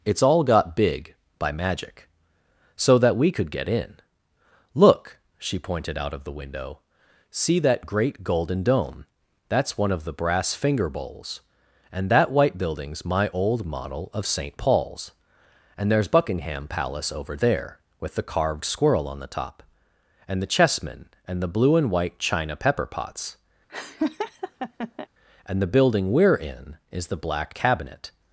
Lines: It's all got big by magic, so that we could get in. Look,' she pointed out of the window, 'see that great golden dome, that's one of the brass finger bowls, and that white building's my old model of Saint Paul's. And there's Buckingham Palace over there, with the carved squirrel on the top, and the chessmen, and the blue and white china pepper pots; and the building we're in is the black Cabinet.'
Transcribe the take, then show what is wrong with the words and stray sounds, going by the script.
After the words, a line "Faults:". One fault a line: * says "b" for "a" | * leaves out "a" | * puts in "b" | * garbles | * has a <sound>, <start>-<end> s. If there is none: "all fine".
It's all got big by magic, so that we could get in. Look,' she pointed out of the window, 'see that great golden dome, that's one of the brass finger bowls, and that white building's my old model of Saint Paul's. And there's Buckingham Palace over there, with the carved squirrel on the top, and the chessmen, and the blue and white china pepper pots; and the building we're in is the black Cabinet.'
Faults:
* has a laugh, 23.7-25.1 s